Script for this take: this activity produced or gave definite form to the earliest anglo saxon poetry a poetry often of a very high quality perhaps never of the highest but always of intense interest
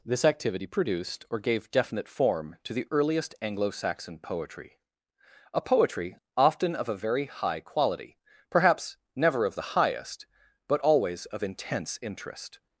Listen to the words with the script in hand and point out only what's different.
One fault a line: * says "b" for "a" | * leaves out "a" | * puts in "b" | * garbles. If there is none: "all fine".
all fine